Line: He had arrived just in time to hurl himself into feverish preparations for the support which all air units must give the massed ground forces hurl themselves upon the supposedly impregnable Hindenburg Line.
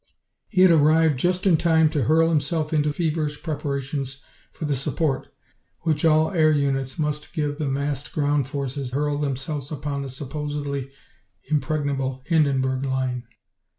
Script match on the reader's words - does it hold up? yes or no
yes